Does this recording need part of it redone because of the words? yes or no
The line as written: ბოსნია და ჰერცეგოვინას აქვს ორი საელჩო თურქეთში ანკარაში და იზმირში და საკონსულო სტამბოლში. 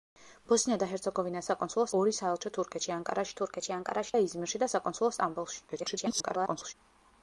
yes